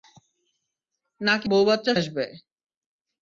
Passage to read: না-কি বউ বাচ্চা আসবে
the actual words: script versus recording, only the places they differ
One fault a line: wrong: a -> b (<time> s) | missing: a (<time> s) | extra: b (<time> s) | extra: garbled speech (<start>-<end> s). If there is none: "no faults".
no faults